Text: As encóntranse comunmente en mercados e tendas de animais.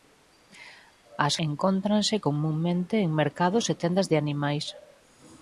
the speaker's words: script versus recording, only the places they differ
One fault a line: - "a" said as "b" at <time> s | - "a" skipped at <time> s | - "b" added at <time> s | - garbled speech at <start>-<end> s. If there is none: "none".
none